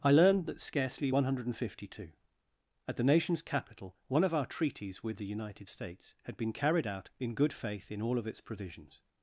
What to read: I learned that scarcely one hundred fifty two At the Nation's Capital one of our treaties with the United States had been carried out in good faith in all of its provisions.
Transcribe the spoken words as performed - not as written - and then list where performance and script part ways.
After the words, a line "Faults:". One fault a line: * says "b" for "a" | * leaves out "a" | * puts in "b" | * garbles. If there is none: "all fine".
I learned that scarcely one hundred fifty two At the Nation's Capital one of our treaties with the United States had been carried out in good faith in all of its provisions.
Faults:
all fine